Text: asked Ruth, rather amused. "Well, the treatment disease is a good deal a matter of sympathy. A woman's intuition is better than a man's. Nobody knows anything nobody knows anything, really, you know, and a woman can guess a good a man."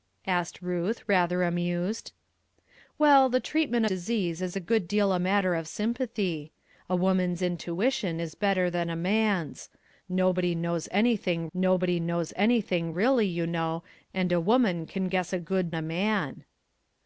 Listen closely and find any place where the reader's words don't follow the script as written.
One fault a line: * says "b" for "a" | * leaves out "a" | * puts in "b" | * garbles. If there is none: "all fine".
all fine